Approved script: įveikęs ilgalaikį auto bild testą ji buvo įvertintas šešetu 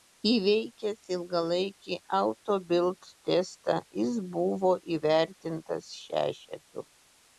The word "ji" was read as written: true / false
false